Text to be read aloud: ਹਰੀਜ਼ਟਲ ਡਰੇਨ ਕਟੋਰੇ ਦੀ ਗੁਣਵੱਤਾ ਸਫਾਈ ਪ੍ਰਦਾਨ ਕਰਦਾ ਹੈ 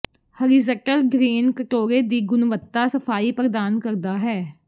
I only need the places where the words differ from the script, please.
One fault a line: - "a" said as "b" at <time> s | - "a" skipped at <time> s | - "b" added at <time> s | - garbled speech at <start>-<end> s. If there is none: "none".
none